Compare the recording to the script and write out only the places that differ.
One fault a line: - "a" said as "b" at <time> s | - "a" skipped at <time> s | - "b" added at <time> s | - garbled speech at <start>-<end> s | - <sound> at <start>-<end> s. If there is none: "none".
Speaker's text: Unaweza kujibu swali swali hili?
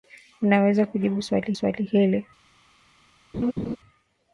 - laugh at 3.3-3.8 s